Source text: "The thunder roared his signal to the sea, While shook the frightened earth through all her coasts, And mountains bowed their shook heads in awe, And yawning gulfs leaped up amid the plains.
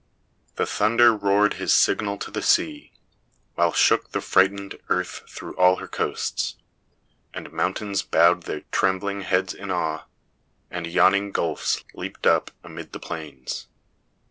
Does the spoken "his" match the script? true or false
true